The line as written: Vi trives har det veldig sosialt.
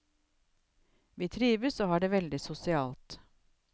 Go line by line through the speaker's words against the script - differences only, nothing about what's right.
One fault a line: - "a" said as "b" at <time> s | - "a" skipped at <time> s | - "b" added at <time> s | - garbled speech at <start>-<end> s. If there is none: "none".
- "og" added at 1.8 s